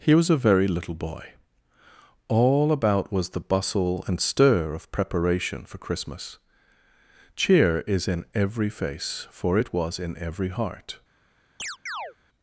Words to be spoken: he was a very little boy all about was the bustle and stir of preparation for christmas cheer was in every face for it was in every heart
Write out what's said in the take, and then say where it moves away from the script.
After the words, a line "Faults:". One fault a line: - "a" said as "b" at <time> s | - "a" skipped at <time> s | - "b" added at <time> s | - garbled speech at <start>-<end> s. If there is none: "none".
he was a very little boy all about was the bustle and stir of preparation for christmas cheer is in every face for it was in every heart
Faults:
- "was" said as "is" at 7.9 s